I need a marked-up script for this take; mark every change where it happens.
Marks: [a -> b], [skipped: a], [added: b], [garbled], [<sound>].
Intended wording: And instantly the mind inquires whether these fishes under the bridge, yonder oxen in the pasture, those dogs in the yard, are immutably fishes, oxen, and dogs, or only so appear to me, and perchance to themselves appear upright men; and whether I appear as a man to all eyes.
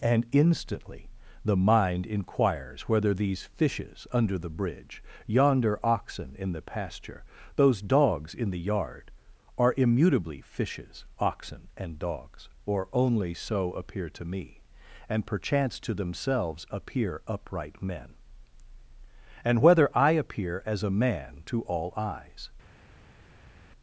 And instantly the mind inquires whether these fishes under the bridge, yonder oxen in the pasture, those dogs in the yard, are immutably fishes, oxen, and dogs, or only so appear to me, and perchance to themselves appear upright men; and whether I appear as a man to all eyes.